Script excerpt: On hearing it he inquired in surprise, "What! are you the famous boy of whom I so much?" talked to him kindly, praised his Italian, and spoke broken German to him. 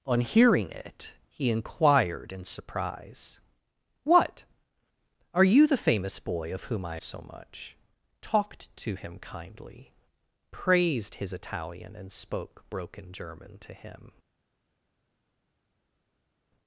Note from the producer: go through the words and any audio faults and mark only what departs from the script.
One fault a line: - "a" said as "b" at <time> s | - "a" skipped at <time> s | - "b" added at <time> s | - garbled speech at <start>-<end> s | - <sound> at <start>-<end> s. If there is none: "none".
none